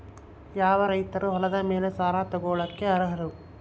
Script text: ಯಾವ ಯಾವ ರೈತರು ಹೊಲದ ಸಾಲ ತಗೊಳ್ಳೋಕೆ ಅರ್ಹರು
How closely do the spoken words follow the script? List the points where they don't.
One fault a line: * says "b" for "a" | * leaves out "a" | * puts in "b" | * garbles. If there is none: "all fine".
* leaves out "ಯಾವ"
* puts in "ಮೇಲೆ"